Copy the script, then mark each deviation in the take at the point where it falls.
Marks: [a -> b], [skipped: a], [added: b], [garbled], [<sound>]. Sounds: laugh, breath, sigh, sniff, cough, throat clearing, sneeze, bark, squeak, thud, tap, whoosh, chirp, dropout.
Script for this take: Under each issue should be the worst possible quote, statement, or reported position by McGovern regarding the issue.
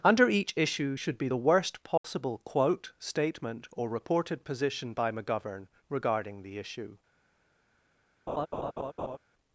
Under each issue should be the worst possible [dropout] quote, statement, or reported position by McGovern regarding the issue. [laugh]